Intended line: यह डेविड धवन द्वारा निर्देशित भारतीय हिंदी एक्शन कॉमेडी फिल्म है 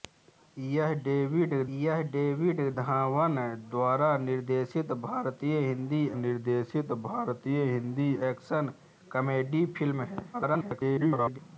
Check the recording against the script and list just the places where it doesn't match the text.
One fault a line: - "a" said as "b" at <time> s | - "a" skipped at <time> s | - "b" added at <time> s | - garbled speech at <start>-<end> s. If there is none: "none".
- "यह डेविड" added at 1.8 s
- "निर्देशित भारतीय हिंदी" added at 6.2 s
- garbled speech at 10.3-11.4 s